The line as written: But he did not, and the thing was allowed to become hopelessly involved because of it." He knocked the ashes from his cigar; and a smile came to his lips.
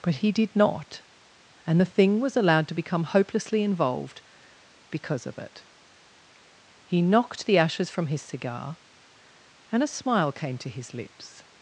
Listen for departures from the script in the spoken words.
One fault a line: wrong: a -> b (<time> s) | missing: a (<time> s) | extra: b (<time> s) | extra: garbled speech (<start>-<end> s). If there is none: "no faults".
no faults